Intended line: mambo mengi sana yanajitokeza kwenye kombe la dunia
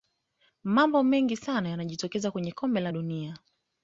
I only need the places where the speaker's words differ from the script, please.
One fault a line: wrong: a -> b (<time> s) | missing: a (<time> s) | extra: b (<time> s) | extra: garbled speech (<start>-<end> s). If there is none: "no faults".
no faults